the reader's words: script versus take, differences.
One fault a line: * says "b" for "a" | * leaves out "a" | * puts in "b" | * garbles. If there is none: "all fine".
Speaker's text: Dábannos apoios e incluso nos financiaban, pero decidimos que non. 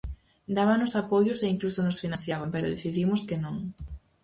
all fine